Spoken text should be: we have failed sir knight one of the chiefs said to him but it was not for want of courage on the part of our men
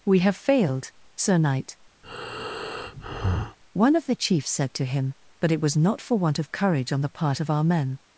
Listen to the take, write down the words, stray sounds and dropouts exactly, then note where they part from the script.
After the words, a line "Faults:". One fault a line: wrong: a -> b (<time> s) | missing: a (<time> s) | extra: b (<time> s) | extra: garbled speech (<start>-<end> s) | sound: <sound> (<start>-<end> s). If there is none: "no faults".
we have failed sir knight one of the chiefs said to him but it was not for want of courage on the part of our men
Faults:
sound: breath (2.0-3.6 s)